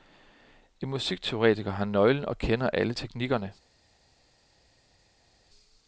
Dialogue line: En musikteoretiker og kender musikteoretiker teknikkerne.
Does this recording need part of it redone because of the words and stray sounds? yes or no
yes